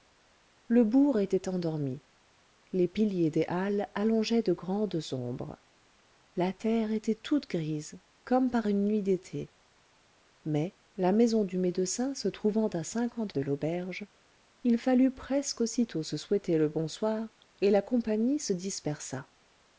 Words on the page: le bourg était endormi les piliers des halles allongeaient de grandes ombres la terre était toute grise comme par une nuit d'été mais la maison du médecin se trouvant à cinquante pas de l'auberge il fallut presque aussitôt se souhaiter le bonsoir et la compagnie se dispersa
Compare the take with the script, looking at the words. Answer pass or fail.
fail